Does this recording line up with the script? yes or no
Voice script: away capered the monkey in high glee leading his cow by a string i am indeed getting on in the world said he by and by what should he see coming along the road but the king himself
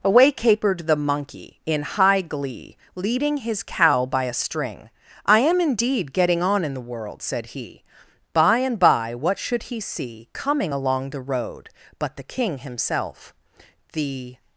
no